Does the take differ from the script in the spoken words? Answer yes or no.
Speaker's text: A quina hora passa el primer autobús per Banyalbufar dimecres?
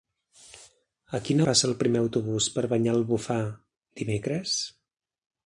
yes